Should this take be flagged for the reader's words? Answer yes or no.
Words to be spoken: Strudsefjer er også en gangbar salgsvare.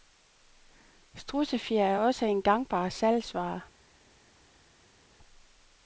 no